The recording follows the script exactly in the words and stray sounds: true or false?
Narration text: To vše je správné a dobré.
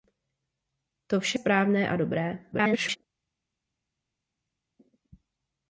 false